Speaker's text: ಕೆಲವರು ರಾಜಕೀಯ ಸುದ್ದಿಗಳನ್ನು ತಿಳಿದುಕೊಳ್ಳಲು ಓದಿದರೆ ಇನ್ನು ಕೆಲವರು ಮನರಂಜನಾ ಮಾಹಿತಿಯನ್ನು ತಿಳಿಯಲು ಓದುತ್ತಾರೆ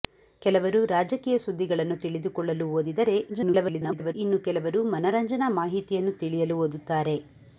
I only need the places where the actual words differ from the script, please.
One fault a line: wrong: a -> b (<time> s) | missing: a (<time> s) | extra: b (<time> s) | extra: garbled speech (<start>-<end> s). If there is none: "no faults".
extra: garbled speech (3.3-4.2 s)